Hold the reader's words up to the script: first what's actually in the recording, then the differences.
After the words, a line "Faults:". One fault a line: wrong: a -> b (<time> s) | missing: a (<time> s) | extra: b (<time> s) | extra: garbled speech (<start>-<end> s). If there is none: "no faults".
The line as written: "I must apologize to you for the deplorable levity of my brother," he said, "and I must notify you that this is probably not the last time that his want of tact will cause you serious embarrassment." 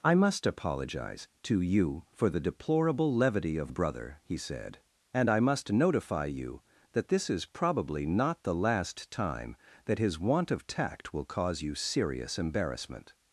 "I must apologize to you for the deplorable levity of brother," he said, "and I must notify you that this is probably not the last time that his want of tact will cause you serious embarrassment."
Faults:
missing: my (3.7 s)